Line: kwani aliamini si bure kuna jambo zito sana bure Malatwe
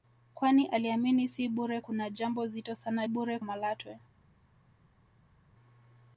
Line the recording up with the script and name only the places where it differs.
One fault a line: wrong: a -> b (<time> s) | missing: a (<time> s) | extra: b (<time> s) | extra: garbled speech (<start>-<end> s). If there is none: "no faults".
no faults